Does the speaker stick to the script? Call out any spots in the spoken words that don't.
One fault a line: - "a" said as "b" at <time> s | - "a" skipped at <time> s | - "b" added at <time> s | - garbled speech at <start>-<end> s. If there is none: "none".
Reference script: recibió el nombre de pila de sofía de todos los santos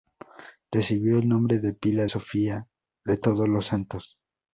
- "de" skipped at 2.1 s